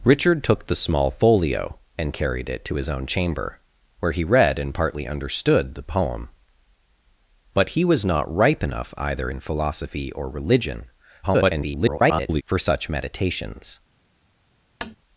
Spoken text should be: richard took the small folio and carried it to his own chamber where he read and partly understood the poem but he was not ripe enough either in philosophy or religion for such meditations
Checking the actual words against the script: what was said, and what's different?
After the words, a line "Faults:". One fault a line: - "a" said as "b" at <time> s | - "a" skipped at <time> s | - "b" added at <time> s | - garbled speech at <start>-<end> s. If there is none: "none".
richard took the small folio and carried it to his own chamber where he read and partly understood the poem but he was not ripe enough either in philosophy or religion [garbled] for such meditations
Faults:
- garbled speech at 11.2-12.4 s